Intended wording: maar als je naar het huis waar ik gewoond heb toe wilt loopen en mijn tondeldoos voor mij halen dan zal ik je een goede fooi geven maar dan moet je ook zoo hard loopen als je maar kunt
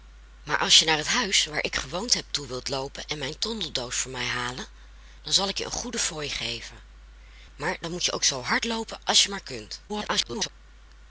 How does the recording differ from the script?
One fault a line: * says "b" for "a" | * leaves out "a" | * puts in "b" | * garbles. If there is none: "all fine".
* garbles